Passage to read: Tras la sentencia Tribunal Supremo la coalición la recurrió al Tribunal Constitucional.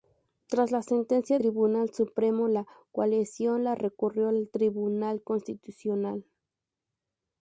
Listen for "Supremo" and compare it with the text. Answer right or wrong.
right